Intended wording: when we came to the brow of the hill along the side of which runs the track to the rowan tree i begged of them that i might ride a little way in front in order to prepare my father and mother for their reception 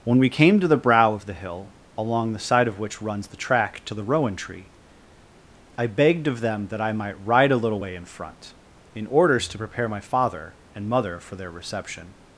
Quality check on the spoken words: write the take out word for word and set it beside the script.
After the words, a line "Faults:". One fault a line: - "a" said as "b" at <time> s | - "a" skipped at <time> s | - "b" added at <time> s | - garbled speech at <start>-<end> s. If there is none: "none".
when we came to the brow of the hill along the side of which runs the track to the rowan tree i begged of them that i might ride a little way in front in orders to prepare my father and mother for their reception
Faults:
- "order" said as "orders" at 9.1 s